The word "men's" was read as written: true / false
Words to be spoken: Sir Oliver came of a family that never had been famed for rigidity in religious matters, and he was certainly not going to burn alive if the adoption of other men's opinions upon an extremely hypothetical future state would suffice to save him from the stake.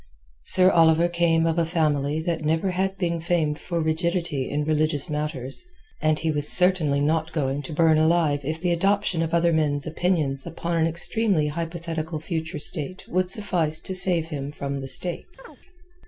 true